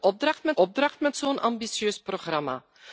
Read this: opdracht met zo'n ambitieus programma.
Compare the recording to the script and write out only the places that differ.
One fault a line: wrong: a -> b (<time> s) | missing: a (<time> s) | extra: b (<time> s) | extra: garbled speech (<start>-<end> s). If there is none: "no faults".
extra: opdracht met (0.5 s)